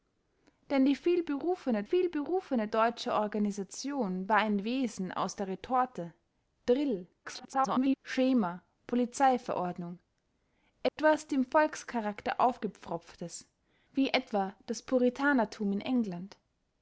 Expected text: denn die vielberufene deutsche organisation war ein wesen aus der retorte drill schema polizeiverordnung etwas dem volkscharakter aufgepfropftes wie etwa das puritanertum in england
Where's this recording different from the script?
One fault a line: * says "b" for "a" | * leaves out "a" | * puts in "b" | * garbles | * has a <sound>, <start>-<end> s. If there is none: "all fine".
* puts in "vielberufene"
* garbles
* has a dropout, 10.9-11.0 s